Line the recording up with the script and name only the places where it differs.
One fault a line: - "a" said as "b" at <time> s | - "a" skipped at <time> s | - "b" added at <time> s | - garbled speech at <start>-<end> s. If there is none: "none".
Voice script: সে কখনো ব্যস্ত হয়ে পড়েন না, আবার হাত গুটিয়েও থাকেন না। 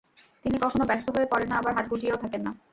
- "সে" said as "তিনি" at 0.5 s